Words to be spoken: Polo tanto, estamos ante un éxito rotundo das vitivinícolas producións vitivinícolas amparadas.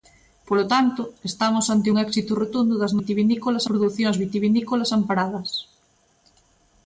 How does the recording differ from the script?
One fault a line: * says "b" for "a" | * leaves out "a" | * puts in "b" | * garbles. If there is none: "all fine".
all fine